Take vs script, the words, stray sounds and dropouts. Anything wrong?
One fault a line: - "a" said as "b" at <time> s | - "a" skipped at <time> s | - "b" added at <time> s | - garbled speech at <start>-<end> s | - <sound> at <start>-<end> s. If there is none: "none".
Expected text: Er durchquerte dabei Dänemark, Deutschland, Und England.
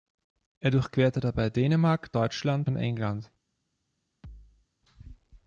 - thud at 4.2-4.7 s